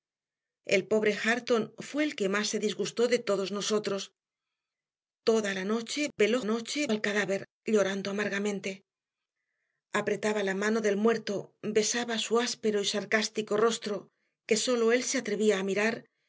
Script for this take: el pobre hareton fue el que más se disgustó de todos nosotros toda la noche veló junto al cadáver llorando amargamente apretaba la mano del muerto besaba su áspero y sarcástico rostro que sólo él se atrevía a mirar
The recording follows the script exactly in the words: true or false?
false